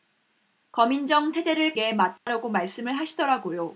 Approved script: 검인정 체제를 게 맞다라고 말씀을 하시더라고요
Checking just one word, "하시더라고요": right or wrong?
right